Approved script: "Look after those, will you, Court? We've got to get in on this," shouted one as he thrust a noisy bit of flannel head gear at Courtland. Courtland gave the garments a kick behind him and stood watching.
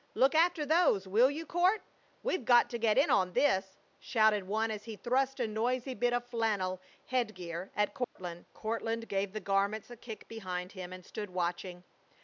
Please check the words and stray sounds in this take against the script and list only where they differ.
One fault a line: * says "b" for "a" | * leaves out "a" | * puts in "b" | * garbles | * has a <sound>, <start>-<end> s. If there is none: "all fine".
* has a dropout, 8.0-8.2 s